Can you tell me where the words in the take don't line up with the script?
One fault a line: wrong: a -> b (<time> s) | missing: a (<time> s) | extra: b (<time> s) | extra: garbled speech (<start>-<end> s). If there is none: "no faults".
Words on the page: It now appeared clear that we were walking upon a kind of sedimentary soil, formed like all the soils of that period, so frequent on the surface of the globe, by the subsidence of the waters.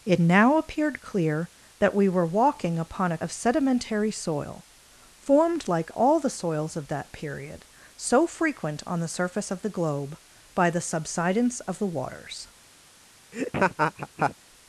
missing: kind (3.2 s)